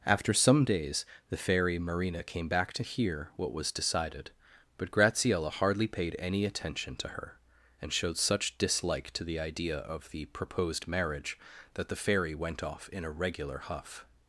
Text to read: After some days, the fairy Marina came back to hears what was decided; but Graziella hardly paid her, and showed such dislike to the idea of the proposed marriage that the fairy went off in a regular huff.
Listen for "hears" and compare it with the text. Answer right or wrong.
wrong